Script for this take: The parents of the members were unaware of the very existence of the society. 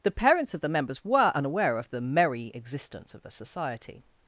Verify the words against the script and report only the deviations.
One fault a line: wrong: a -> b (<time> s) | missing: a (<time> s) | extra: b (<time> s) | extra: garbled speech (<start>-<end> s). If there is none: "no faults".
wrong: very -> merry (2.0 s)